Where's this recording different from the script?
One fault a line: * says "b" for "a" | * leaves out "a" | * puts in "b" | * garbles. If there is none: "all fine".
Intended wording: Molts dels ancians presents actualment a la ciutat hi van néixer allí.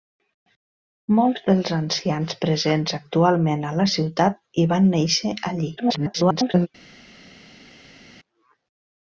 * garbles